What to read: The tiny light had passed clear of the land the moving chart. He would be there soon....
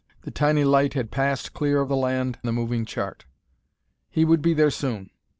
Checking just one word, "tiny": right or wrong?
right